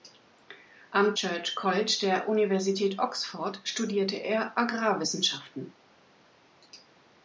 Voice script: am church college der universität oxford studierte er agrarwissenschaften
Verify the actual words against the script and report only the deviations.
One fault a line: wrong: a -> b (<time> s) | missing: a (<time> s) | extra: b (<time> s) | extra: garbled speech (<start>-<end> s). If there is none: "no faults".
no faults